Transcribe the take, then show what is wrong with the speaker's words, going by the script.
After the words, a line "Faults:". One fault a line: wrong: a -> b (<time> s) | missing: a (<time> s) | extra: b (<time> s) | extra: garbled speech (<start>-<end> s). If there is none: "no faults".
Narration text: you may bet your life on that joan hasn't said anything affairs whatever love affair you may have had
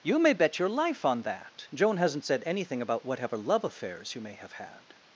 you may bet your life on that joan hasn't said anything about whatever love affairs you may have had
Faults:
wrong: affairs -> about (2.8 s)
wrong: affair -> affairs (3.6 s)